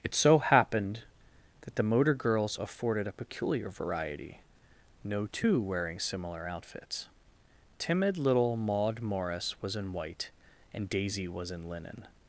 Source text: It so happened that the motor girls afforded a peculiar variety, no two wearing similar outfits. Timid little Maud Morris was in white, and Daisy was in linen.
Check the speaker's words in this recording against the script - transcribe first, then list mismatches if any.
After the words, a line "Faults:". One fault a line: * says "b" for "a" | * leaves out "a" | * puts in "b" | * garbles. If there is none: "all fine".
It so happened that the motor girls afforded a peculiar variety, no two wearing similar outfits. Timid little Maud Morris was in white, and Daisy was in linen.
Faults:
all fine